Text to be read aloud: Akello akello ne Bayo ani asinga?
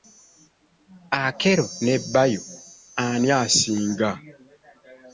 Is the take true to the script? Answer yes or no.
no